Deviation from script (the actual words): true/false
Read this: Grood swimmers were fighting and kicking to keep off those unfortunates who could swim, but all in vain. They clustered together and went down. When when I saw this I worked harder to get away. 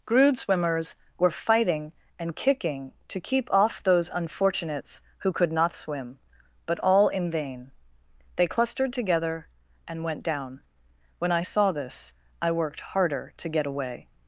true